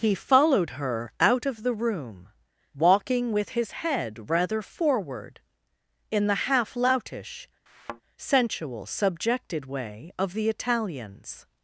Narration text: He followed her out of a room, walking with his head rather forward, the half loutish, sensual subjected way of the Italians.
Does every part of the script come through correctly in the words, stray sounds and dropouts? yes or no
no